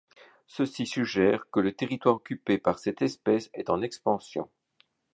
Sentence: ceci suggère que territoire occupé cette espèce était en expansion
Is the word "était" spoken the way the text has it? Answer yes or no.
no